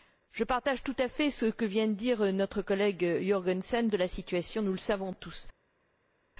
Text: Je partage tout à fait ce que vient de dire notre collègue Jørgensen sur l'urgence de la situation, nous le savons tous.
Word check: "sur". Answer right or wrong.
wrong